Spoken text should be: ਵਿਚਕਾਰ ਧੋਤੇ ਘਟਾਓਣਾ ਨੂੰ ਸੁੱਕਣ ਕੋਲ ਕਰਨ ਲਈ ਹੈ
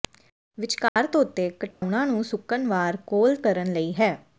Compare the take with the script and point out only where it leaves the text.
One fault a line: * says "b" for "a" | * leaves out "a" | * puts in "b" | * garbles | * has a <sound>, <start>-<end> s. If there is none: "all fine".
* has a dropout, 0.9-1.0 s
* has a dropout, 1.7-1.8 s
* puts in "ਵਾਰ"